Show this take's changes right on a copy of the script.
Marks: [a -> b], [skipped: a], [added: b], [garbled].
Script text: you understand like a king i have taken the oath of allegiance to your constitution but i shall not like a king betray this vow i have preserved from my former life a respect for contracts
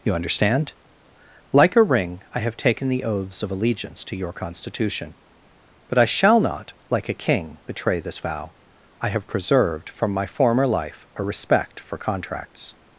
you understand like a [king -> ring] i have taken the [oath -> oaths] of allegiance to your constitution but i shall not like a king betray this vow i have preserved from my former life a respect for contracts